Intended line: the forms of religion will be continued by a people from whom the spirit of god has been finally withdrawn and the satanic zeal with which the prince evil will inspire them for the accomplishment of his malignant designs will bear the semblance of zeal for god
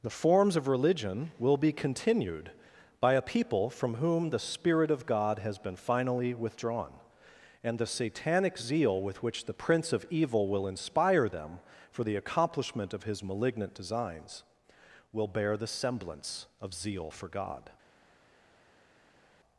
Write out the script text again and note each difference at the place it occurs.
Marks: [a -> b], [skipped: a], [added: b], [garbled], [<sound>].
the forms of religion will be continued by a people from whom the spirit of god has been finally withdrawn and the satanic zeal with which the prince [added: of] evil will inspire them for the accomplishment of his malignant designs will bear the semblance of zeal for god